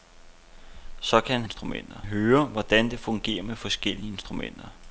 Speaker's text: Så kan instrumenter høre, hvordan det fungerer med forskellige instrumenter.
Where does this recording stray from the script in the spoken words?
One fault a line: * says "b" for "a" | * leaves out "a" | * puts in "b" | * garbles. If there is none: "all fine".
all fine